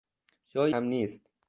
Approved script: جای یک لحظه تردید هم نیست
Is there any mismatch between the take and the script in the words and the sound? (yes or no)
yes